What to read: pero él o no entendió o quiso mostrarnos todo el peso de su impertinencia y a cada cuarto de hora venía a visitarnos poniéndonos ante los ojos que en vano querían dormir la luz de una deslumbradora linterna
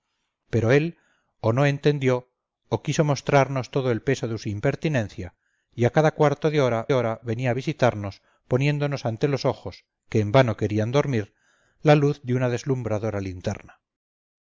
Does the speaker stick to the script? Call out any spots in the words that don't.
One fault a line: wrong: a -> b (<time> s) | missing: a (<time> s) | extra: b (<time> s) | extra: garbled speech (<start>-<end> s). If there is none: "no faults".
extra: hora (6.9 s)